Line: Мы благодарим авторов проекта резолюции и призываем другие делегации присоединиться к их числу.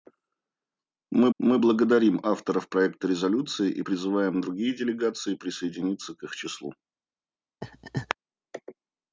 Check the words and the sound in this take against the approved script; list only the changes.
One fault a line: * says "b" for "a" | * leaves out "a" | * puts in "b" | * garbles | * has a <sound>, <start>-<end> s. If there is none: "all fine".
* puts in "мы"
* has a laugh, 7.6-8.1 s